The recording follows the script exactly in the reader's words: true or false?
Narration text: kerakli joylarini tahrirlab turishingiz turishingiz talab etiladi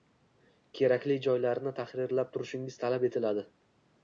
false